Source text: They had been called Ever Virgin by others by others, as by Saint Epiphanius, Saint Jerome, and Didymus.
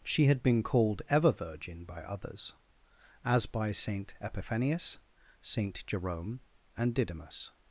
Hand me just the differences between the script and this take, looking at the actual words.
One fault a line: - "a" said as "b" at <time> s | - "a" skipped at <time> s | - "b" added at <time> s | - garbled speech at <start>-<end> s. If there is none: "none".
- "They" said as "She" at 0.0 s
- "by others" skipped at 2.5 s